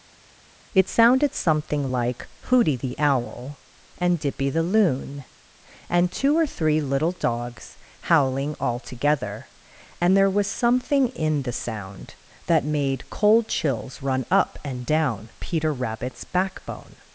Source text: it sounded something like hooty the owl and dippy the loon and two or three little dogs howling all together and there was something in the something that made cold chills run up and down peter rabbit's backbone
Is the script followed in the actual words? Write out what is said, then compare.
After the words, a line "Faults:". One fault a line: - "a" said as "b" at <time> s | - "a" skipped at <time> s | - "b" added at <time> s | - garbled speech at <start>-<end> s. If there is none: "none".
it sounded something like hooty the owl and dippy the loon and two or three little dogs howling all together and there was something in the sound that made cold chills run up and down peter rabbit's backbone
Faults:
- "something" said as "sound" at 11.5 s